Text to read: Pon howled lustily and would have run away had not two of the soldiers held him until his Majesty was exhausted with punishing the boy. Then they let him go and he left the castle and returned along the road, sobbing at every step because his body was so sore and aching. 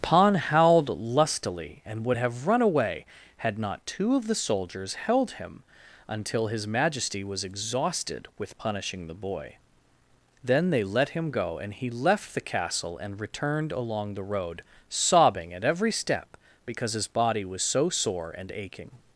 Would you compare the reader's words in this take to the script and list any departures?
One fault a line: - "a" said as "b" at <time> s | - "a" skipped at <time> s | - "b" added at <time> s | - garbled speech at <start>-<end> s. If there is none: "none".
none